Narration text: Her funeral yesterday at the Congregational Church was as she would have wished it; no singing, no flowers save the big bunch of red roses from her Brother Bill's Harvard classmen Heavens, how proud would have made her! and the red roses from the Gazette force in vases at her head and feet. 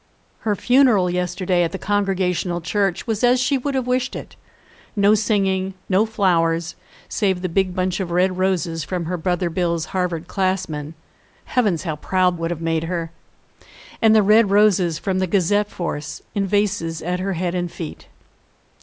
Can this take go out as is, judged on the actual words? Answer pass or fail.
pass